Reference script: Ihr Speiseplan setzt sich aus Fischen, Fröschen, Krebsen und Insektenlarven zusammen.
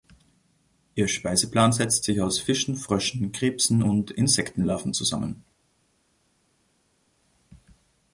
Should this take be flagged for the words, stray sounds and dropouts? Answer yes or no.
no